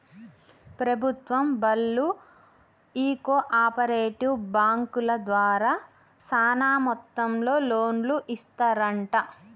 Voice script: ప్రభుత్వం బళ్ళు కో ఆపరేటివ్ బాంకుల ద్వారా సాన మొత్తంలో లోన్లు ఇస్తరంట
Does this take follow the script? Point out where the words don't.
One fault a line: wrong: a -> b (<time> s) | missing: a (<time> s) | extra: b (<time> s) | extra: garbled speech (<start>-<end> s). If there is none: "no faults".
extra: ఈ (2.9 s)